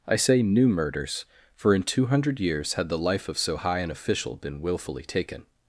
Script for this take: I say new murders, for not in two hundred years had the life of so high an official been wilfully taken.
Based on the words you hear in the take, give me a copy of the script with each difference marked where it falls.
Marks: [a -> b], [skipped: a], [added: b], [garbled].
I say new murders, for [skipped: not] in two hundred years had the life of so high an official been wilfully taken.